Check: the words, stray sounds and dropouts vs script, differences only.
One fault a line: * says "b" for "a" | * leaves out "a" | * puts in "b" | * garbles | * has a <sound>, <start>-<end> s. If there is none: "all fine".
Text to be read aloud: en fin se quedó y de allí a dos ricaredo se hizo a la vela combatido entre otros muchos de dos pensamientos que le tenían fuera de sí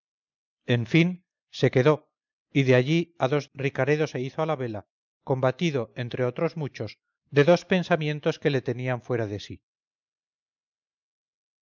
all fine